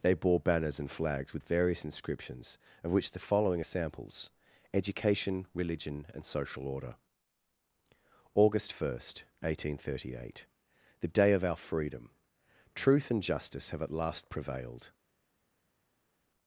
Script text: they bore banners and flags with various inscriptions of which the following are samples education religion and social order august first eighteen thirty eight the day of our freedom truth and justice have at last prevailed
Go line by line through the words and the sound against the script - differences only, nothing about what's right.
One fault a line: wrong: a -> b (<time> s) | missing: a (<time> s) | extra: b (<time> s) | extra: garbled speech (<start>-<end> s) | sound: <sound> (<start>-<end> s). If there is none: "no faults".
no faults